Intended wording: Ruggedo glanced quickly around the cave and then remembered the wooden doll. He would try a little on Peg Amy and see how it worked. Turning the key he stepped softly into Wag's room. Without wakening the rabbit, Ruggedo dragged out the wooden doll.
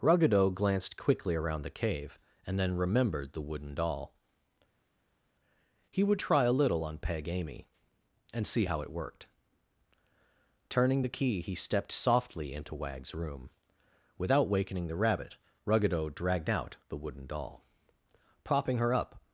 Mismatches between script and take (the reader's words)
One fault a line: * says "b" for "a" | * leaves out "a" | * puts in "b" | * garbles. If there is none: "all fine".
* puts in "Propping her up"